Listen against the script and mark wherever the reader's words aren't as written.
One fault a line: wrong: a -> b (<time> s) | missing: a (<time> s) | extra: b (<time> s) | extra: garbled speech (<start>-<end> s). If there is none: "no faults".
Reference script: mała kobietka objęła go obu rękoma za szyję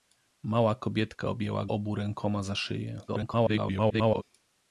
missing: go (1.7 s)
extra: garbled speech (3.1-4.2 s)